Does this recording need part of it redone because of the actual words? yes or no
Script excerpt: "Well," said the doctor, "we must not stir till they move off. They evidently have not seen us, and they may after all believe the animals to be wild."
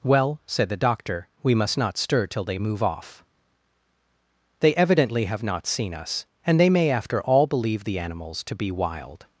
no